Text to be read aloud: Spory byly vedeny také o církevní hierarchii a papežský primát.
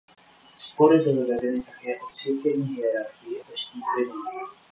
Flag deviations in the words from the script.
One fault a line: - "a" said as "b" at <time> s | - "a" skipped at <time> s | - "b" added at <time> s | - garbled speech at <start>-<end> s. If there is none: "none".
- "a" skipped at 3.4 s